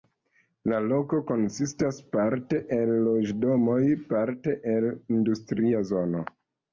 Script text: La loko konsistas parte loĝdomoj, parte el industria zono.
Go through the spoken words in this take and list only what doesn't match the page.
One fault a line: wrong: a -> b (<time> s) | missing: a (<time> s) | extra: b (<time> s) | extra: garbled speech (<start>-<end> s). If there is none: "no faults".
extra: el (2.8 s)